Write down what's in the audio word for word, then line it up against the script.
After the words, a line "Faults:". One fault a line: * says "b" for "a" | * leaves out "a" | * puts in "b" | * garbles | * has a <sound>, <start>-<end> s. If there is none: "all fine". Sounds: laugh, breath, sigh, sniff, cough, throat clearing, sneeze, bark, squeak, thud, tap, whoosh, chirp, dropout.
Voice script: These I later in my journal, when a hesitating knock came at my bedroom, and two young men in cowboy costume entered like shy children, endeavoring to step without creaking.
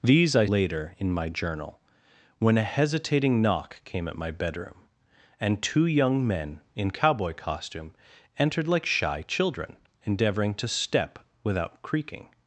These I later in my journal, when a hesitating knock came at my bedroom, and two young men in cowboy costume entered like shy children, endeavoring to step without creaking.
Faults:
all fine